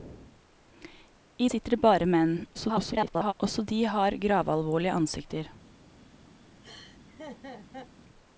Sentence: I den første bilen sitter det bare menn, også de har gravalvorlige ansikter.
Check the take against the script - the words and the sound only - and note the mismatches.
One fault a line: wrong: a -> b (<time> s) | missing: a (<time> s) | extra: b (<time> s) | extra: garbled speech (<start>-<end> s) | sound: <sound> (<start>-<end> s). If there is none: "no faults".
missing: den første bilen (1.5 s)
extra: garbled speech (2.5-3.3 s)
sound: laugh (6.6-7.9 s)